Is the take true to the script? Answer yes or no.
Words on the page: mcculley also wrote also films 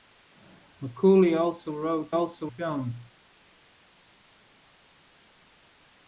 yes